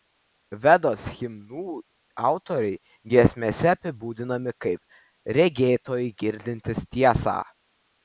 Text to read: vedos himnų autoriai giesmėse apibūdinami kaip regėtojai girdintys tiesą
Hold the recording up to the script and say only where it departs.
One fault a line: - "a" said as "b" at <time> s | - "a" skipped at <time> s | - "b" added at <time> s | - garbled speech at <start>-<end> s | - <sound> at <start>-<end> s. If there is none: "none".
none